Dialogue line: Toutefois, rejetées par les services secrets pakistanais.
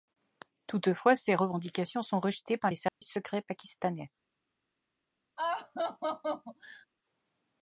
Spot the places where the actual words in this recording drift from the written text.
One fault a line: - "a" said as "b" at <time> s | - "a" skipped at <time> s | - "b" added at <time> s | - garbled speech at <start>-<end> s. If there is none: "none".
- "ces revendications sont" added at 1.1 s